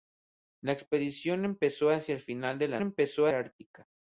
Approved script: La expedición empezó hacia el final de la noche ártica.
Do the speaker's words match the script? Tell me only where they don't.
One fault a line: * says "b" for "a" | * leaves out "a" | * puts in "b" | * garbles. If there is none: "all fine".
* says "empezó" for "noche"